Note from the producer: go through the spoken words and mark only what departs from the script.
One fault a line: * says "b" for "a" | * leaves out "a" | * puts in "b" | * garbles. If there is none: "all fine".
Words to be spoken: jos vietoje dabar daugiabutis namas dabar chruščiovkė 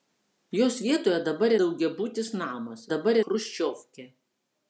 all fine